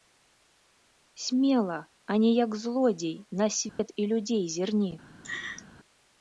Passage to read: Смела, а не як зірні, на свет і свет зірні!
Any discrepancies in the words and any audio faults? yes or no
yes